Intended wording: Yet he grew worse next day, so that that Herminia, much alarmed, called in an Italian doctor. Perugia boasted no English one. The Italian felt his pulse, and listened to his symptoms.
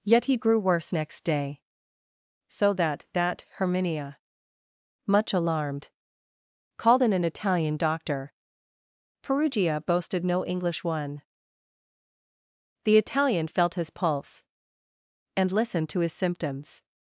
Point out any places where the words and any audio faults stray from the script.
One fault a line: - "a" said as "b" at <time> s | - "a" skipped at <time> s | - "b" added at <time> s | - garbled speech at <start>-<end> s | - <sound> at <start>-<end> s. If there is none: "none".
none